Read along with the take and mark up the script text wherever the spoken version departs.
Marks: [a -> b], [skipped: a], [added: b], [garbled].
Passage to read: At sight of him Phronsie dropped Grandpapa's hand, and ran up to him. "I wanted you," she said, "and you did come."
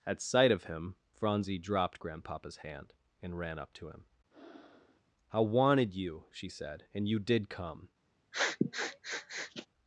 At sight of him Phronsie dropped Grandpapa's hand, and ran up to him. "I wanted you," she said, "and you did come."